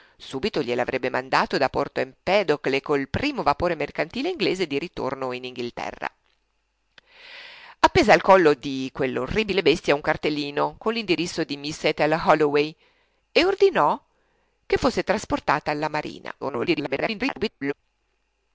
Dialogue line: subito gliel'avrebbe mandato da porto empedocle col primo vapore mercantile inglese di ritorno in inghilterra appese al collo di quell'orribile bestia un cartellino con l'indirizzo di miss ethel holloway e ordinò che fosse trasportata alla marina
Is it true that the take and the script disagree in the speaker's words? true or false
true